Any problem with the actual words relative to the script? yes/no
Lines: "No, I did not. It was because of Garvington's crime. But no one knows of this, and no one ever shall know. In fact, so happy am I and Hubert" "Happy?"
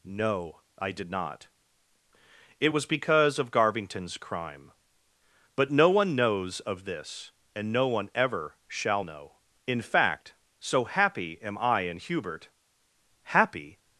no